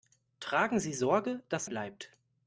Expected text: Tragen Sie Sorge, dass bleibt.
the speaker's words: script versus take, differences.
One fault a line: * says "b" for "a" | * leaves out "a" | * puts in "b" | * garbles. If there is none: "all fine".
all fine